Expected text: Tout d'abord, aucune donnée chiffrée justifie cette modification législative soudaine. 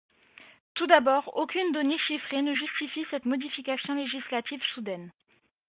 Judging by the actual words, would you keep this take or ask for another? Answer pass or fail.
fail